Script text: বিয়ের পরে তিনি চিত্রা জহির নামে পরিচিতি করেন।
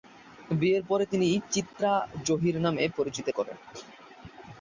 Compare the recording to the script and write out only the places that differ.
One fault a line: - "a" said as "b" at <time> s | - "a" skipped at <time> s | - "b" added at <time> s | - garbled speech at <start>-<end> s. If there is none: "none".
none